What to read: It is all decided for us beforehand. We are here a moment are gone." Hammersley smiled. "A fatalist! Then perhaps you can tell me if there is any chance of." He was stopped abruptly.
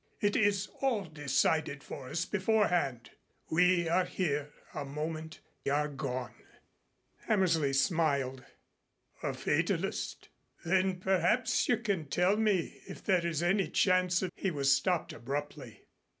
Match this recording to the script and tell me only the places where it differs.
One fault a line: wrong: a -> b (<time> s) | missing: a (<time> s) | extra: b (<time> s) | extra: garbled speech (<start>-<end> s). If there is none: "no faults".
no faults